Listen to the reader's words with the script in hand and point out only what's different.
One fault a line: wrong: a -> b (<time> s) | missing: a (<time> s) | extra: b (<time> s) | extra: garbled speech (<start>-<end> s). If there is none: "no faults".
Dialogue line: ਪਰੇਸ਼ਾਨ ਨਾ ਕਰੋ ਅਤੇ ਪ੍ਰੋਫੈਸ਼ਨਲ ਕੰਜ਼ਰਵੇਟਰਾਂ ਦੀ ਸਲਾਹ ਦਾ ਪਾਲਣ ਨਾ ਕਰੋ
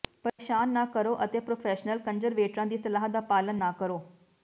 no faults